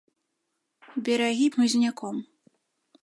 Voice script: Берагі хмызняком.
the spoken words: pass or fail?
pass